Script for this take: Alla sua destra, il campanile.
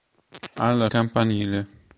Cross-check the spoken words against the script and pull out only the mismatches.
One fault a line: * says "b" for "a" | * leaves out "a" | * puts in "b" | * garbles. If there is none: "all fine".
* leaves out "sua destra il"